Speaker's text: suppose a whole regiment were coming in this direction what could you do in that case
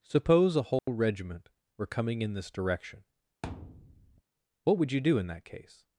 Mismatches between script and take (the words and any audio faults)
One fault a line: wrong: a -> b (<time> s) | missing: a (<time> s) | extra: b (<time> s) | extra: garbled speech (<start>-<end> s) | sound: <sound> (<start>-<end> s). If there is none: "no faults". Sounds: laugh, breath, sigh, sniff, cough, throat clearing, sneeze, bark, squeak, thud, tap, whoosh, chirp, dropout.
sound: dropout (0.8-0.9 s)
sound: thud (3.4-4.2 s)
wrong: could -> would (4.8 s)